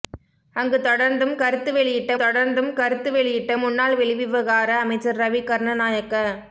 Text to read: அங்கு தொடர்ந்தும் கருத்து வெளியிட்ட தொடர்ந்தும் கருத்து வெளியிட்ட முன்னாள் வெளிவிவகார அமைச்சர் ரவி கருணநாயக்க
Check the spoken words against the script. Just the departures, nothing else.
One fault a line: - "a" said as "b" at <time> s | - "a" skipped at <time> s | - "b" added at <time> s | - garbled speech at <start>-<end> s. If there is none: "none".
none